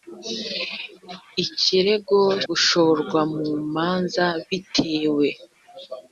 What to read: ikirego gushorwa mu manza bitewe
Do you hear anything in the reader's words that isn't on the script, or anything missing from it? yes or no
no